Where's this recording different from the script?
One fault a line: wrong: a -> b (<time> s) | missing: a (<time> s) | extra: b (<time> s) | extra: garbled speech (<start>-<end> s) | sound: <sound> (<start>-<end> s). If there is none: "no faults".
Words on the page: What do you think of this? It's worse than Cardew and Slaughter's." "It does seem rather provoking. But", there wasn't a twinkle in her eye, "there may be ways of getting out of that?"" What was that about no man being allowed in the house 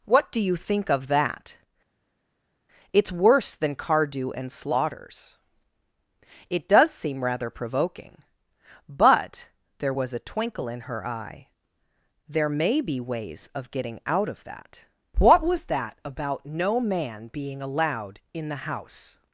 wrong: this -> that (1.1 s)
wrong: wasn't -> was (9.9 s)